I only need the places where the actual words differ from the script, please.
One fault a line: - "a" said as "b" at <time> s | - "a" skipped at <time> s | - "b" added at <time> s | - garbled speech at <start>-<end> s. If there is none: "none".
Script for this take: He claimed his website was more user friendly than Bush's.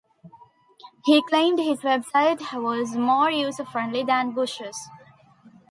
none